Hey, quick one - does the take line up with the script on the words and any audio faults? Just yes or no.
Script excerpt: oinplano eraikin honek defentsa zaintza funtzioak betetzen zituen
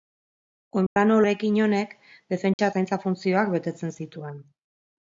no